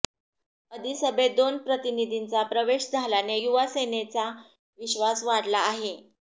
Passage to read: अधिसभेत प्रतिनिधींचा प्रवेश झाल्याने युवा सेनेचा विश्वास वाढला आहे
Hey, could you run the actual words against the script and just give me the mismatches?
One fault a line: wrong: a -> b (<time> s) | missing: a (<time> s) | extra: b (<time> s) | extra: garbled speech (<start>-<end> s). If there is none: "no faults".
extra: दोन (1.4 s)